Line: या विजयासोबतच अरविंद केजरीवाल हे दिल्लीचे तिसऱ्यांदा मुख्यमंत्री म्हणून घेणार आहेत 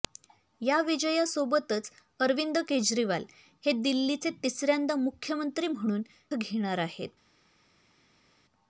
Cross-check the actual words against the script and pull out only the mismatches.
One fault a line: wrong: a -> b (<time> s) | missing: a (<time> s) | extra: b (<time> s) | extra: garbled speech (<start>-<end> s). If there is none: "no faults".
no faults